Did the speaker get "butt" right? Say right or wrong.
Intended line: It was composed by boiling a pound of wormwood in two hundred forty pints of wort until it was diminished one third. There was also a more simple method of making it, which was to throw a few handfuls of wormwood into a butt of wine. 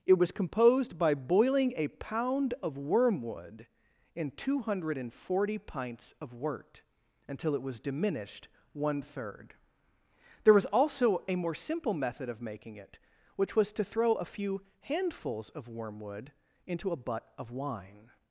right